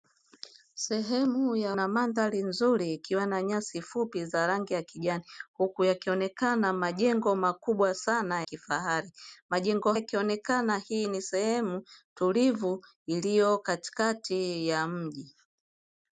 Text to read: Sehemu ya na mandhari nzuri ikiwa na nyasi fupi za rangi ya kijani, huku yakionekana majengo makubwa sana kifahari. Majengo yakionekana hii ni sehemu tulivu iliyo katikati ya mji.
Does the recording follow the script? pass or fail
pass